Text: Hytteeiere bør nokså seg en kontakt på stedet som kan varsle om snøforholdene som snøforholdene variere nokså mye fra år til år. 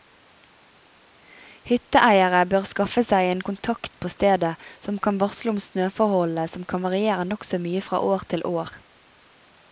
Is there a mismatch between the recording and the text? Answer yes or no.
yes